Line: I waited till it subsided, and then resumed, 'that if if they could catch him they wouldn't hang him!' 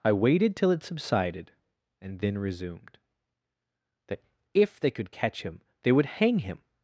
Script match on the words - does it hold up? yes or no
no